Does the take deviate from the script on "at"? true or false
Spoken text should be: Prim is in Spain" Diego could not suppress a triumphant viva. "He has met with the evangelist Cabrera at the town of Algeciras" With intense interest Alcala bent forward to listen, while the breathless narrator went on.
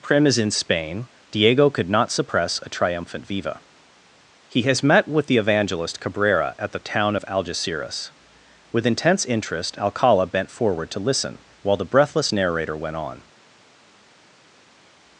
false